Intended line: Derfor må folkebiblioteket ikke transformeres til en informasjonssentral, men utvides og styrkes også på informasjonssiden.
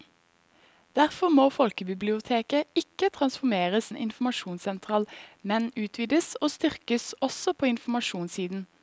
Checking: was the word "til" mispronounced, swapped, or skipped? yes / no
yes